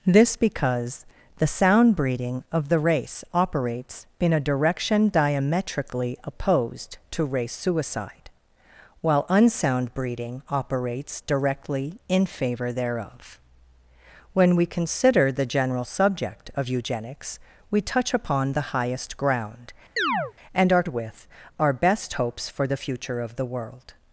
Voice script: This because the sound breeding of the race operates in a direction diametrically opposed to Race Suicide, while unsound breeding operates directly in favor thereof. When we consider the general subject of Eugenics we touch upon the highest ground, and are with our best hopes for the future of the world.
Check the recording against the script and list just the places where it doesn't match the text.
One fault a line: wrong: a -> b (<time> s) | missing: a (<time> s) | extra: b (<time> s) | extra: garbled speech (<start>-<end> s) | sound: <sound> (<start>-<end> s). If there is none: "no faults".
sound: chirp (20.0-20.3 s)